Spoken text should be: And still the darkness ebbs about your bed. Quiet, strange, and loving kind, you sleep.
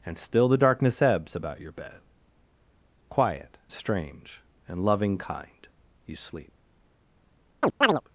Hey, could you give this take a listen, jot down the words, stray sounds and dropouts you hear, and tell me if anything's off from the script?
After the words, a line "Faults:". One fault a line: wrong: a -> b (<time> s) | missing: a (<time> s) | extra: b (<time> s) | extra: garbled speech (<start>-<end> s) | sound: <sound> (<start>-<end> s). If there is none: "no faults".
And still the darkness ebbs about your bed. Quiet, strange, and loving kind, you sleep.
Faults:
sound: chirp (7.6-8.0 s)